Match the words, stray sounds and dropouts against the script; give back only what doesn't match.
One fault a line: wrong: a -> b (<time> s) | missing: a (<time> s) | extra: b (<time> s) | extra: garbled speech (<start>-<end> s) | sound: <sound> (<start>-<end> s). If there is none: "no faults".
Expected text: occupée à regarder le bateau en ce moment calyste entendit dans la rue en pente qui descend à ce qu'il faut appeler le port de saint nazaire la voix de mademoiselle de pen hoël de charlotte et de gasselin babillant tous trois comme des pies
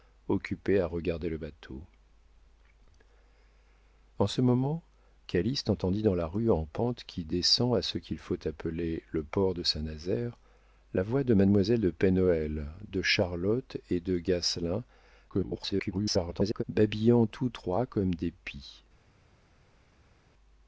extra: garbled speech (15.3-16.6 s)